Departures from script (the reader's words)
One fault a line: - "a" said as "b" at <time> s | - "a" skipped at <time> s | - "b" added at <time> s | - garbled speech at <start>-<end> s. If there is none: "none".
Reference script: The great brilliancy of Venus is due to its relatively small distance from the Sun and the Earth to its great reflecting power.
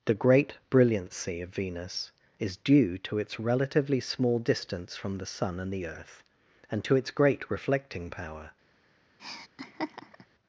- "and" added at 6.7 s